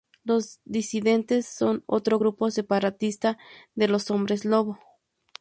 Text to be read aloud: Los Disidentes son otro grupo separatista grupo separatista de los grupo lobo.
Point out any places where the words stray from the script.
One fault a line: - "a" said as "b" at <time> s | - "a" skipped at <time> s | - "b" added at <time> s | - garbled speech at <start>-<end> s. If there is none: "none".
- "grupo separatista" skipped at 3.4 s
- "grupo" said as "hombres" at 4.1 s